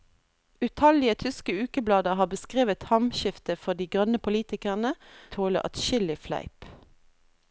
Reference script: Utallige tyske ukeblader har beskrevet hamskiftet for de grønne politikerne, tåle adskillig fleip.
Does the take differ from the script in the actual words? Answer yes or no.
no